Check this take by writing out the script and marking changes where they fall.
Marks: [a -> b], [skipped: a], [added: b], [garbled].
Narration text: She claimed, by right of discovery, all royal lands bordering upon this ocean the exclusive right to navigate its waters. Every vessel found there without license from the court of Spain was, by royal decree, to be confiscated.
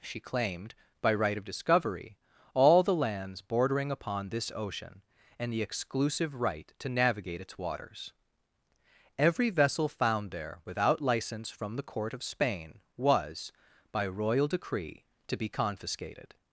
She claimed, by right of discovery, all [royal -> the] lands bordering upon this ocean [added: and] the exclusive right to navigate its waters. Every vessel found there without license from the court of Spain was, by royal decree, to be confiscated.